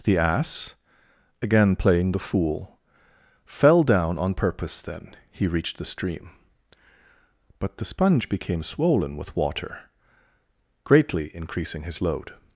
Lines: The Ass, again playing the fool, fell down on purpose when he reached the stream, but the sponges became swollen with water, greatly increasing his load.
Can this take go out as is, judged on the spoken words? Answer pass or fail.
fail